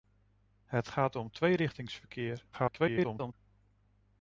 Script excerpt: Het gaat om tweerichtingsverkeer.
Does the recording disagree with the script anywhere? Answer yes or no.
yes